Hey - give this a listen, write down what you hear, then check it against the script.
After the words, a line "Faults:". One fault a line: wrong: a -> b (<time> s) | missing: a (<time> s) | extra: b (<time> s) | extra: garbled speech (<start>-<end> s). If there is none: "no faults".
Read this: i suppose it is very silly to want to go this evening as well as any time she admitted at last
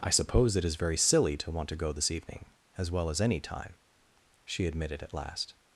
i suppose it is very silly to want to go this evening as well as any time she admitted at last
Faults:
no faults